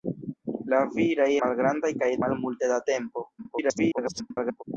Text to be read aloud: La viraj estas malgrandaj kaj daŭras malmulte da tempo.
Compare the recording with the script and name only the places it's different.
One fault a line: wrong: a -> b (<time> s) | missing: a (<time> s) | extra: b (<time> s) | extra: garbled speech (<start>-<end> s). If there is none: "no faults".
missing: estas (1.3 s)
missing: daŭras (2.1 s)
extra: garbled speech (3.4-4.6 s)